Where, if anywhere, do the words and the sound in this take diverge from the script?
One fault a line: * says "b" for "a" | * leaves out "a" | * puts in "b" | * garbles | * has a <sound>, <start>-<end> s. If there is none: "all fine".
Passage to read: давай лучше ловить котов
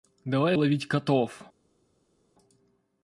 * leaves out "лучше"